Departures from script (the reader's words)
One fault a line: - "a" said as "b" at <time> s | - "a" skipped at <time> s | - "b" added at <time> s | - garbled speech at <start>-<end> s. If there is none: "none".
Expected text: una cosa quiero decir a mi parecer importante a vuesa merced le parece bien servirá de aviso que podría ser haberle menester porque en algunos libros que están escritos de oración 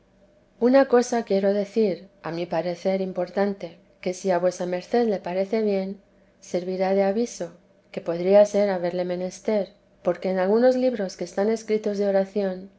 - "que si" added at 4.0 s